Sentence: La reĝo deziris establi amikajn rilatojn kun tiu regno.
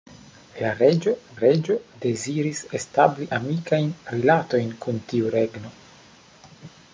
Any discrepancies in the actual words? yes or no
yes